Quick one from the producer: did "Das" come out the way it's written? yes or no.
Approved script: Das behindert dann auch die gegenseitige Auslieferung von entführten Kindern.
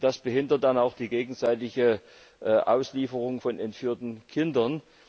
yes